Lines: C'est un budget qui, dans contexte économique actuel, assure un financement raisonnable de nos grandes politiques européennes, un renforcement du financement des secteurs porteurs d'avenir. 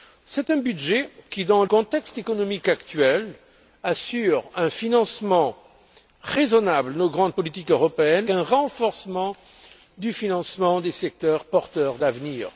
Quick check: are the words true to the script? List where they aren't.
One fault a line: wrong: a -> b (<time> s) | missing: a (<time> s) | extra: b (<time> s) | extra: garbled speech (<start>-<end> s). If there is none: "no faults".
no faults